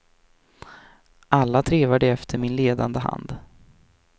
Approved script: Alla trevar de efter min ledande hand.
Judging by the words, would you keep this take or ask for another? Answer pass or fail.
pass